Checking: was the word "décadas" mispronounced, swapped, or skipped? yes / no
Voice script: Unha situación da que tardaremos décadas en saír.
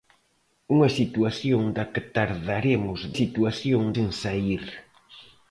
yes